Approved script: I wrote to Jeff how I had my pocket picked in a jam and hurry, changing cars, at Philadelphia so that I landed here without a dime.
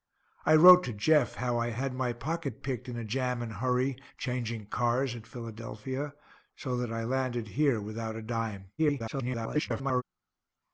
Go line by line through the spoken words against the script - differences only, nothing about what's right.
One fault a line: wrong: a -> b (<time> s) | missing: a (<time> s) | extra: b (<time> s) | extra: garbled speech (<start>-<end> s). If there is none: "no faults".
extra: garbled speech (8.8-10.0 s)